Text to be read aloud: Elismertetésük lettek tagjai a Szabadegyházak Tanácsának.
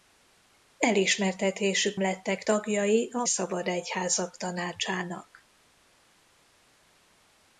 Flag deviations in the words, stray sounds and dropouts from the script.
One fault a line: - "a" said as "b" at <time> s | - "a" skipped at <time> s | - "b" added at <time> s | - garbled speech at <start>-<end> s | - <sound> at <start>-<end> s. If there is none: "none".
none